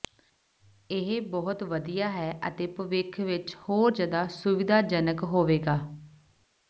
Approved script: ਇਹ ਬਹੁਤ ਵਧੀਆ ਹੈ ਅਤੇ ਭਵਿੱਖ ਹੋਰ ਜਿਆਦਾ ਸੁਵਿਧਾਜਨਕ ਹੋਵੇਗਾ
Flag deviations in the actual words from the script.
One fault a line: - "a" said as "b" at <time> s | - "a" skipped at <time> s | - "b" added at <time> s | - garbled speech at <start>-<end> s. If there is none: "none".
- "ਵਿੱਚ" added at 3.2 s